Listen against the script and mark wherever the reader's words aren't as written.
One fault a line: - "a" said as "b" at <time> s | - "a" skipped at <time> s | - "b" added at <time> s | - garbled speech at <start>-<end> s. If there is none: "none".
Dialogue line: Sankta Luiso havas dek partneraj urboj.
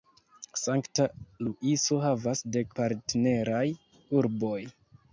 none